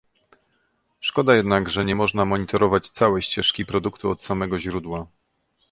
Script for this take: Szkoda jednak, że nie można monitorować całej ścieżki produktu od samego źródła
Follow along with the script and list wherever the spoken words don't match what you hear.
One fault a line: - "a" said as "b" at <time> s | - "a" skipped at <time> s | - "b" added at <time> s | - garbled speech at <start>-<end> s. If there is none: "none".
none